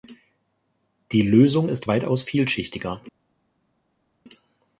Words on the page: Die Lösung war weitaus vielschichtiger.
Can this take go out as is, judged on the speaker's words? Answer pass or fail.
fail